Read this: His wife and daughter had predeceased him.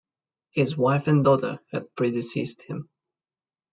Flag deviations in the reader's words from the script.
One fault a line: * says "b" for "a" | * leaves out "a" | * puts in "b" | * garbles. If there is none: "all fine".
all fine